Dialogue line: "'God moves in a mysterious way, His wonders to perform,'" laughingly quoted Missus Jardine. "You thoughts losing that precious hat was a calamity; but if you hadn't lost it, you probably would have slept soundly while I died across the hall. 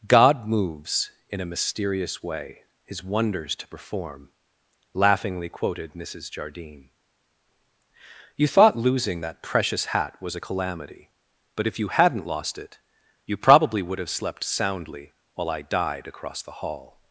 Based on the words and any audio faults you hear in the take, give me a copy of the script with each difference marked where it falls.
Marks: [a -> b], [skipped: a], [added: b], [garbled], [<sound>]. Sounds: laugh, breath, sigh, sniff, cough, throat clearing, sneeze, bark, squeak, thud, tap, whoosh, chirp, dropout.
"'God moves in a mysterious way, His wonders to perform,'" laughingly quoted Missus Jardine. "You [thoughts -> thought] losing that precious hat was a calamity; but if you hadn't lost it, you probably would have slept soundly while I died across the hall.